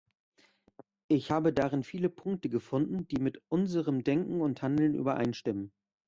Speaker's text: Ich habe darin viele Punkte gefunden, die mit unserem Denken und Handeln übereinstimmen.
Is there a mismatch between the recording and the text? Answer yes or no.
no